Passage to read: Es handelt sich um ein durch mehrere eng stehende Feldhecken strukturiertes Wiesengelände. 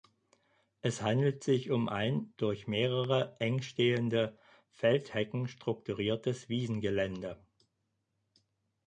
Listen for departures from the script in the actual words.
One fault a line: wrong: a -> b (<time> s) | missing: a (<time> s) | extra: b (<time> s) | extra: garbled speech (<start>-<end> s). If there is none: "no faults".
no faults